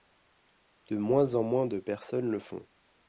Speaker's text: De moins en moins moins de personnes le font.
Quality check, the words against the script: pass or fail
fail